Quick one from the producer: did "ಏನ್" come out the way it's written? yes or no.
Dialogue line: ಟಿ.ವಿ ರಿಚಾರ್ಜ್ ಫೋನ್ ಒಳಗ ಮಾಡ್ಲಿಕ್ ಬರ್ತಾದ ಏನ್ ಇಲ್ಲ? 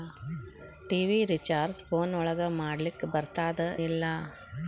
no